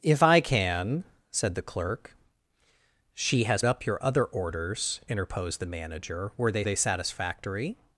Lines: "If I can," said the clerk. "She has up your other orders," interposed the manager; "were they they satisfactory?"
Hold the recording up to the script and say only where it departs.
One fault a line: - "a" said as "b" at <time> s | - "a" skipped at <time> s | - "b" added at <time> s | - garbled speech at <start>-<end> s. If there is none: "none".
none